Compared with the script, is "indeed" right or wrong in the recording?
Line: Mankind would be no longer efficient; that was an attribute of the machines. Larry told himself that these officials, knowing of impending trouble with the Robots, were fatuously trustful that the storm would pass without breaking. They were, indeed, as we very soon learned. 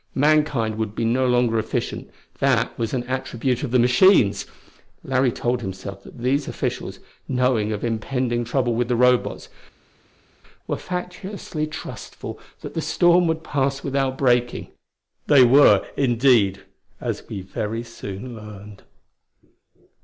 right